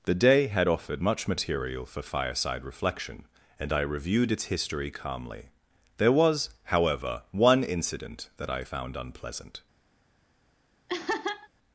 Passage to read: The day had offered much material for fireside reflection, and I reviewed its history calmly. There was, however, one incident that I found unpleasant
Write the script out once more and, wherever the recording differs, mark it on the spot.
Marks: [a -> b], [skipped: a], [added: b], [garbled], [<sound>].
The day had offered much material for fireside reflection, and I reviewed its history calmly. There was, however, one incident that I found unpleasant [laugh]